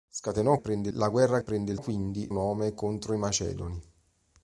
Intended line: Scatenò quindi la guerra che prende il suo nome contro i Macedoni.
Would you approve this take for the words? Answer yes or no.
no